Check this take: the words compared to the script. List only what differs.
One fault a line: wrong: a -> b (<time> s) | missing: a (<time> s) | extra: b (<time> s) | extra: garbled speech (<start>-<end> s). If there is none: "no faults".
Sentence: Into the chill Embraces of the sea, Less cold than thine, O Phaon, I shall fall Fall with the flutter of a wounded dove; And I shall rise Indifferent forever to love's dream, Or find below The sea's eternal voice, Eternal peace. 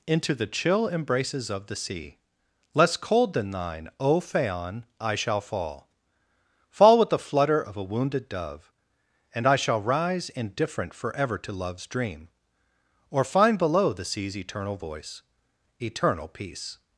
no faults